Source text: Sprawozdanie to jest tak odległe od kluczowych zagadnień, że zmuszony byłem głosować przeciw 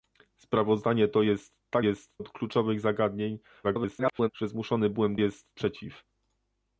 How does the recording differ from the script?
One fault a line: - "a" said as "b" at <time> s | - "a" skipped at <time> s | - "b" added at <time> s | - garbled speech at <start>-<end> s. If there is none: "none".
- "odległe" said as "jest" at 1.8 s
- garbled speech at 3.6-4.3 s
- "głosować" said as "jest" at 5.1 s